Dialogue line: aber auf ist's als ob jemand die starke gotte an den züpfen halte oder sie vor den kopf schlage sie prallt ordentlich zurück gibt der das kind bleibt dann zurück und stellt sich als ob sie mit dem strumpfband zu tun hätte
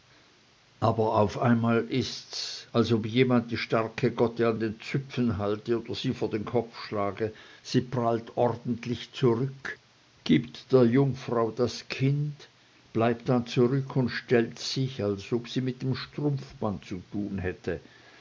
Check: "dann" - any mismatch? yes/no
no